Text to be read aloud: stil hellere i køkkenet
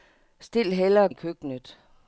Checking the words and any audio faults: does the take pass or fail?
pass